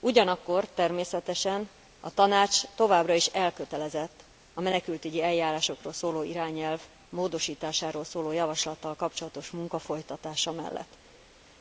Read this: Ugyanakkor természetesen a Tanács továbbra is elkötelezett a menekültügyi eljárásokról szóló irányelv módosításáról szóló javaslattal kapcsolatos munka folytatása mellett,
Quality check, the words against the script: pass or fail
pass